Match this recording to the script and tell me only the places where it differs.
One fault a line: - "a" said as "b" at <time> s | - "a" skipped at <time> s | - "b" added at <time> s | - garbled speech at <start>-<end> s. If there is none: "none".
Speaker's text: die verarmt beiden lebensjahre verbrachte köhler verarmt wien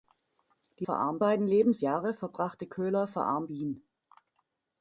none